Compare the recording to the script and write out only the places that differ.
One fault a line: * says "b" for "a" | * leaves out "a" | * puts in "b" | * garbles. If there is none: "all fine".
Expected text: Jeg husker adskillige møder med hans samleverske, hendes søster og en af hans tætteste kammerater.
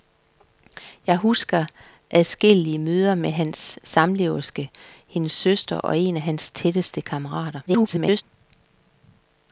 * garbles